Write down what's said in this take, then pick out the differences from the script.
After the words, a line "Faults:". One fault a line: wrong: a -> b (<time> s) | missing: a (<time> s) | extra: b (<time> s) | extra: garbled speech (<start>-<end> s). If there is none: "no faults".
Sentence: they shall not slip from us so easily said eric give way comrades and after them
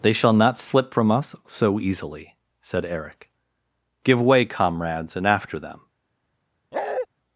they shall not slip from us so easily said eric give way comrades and after them
Faults:
no faults